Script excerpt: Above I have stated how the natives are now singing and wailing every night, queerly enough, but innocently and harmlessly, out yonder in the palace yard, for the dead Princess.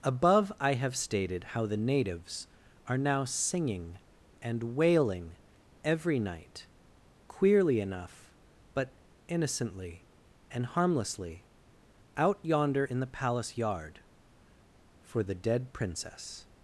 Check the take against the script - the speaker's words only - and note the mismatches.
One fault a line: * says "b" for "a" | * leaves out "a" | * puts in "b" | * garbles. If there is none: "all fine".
all fine